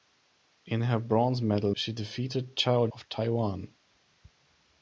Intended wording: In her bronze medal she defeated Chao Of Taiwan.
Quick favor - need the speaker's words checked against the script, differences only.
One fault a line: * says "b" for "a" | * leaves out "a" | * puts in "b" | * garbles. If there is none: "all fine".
all fine